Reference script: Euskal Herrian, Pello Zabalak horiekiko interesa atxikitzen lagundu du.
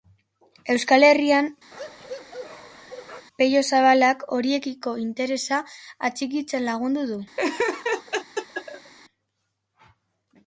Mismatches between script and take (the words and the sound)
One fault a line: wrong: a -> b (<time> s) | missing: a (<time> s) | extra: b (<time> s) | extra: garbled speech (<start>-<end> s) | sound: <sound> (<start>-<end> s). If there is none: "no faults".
sound: bark (1.7-3.3 s)
sound: laugh (7.4-8.9 s)